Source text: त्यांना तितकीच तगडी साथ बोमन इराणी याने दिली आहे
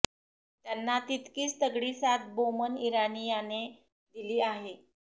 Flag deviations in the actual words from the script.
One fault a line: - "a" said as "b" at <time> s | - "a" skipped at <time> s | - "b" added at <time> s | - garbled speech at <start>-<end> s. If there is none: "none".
none